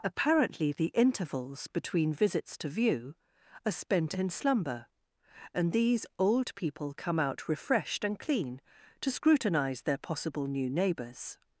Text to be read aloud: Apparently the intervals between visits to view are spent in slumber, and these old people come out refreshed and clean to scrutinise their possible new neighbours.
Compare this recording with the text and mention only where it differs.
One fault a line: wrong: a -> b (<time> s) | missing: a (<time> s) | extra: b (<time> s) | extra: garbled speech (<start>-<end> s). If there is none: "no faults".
no faults